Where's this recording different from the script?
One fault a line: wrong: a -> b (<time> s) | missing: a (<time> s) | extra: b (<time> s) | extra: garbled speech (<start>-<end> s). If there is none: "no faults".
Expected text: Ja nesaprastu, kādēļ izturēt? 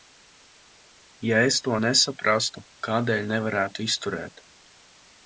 extra: es to (1.5 s)
extra: nevarētu (3.3 s)